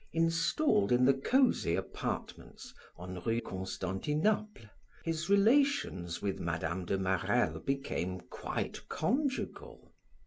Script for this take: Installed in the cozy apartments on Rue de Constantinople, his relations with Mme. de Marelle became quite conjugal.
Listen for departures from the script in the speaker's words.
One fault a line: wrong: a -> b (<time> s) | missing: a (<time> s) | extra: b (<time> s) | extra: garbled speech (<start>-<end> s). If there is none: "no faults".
missing: de (3.4 s)